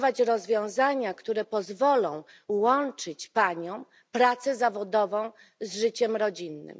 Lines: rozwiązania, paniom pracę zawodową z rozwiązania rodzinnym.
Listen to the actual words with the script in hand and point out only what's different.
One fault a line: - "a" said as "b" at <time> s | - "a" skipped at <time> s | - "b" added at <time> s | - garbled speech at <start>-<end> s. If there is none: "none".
- "które pozwolą łączyć" added at 1.1 s
- "rozwiązania" said as "życiem" at 5.8 s